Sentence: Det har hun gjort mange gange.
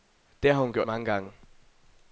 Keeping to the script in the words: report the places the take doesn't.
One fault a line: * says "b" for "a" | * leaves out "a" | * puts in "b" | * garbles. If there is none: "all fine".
all fine